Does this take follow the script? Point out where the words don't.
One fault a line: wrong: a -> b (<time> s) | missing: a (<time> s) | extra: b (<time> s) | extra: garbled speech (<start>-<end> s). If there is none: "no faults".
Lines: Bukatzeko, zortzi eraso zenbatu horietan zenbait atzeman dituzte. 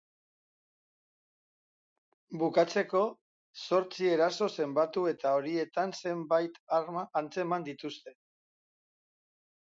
extra: eta (5.1 s)
extra: arma (6.8 s)